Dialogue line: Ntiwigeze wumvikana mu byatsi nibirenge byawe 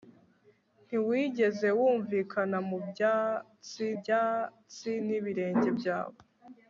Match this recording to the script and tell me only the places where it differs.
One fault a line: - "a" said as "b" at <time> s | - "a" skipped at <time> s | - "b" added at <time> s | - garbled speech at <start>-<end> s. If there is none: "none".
- "byatsi" added at 4.0 s